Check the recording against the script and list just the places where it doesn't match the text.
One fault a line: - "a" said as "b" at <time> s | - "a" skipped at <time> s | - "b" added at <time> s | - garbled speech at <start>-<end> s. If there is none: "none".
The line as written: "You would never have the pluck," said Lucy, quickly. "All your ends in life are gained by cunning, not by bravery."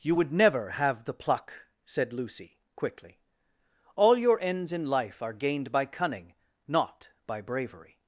none